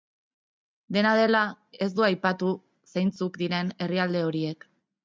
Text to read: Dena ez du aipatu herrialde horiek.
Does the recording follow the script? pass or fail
fail